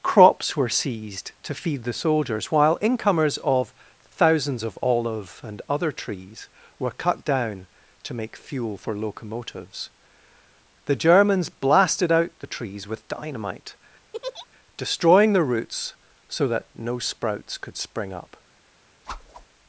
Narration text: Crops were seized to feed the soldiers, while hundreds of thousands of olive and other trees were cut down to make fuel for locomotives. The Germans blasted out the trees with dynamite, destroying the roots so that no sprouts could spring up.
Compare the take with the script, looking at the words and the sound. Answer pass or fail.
fail